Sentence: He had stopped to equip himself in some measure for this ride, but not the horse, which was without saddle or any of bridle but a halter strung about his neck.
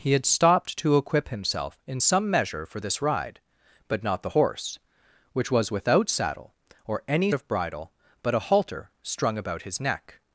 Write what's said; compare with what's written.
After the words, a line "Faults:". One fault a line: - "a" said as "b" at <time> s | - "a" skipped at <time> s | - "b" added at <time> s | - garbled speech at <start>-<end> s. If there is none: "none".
He had stopped to equip himself in some measure for this ride, but not the horse, which was without saddle or any of bridle but a halter strung about his neck.
Faults:
none